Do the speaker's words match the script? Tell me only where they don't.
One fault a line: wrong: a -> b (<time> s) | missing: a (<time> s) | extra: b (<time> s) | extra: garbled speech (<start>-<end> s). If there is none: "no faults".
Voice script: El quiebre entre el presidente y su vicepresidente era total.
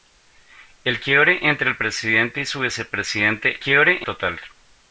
wrong: era -> quiebre (3.6 s)